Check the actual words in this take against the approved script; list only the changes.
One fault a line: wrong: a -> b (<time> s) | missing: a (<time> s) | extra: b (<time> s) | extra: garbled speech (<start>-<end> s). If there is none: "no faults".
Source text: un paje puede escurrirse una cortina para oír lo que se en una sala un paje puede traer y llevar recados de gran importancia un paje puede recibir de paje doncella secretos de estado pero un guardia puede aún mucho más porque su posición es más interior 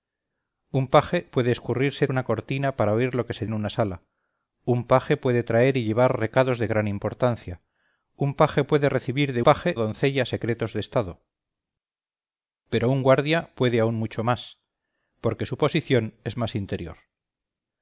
no faults